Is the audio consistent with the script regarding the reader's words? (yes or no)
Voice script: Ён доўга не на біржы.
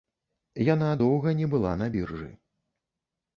no